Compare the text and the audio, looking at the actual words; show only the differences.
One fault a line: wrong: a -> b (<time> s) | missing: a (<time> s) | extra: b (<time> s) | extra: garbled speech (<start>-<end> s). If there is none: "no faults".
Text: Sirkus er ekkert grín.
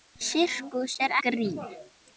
missing: ekkert (1.2 s)